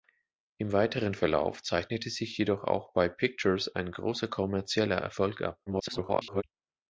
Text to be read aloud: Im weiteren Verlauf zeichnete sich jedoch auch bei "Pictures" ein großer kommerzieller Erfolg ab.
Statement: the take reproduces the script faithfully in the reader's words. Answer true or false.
false